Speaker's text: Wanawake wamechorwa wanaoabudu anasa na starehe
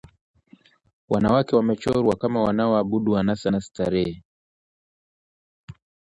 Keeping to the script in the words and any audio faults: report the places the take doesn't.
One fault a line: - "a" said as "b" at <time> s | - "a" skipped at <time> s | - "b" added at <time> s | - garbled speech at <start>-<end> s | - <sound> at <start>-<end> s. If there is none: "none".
- "kama" added at 2.2 s